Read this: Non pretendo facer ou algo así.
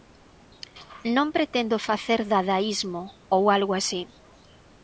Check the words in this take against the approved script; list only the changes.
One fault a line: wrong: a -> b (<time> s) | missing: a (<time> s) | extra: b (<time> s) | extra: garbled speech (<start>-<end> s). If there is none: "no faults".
extra: dadaísmo (2.3 s)